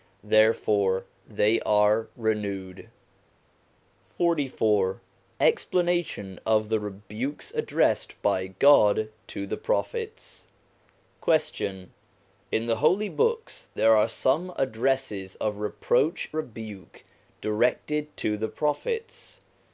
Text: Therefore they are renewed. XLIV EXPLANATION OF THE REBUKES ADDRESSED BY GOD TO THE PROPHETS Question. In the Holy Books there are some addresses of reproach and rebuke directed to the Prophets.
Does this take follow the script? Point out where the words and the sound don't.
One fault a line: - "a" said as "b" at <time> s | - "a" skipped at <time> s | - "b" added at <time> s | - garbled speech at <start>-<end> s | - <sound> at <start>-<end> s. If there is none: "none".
- "and" skipped at 16.3 s